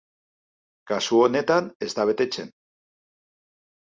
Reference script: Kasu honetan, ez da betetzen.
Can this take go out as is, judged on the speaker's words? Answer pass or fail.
pass